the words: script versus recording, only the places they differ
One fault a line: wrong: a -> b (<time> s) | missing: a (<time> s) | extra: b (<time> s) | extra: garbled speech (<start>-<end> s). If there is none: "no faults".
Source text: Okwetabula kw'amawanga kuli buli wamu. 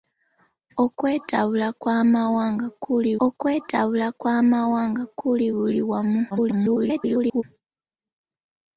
extra: okwetabula kw'amawanga kuli (3.3 s)
extra: garbled speech (6.3-7.4 s)